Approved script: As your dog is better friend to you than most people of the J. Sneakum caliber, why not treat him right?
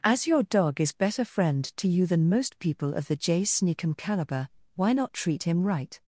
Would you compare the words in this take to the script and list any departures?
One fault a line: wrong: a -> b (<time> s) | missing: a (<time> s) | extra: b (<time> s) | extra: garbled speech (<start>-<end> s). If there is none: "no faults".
no faults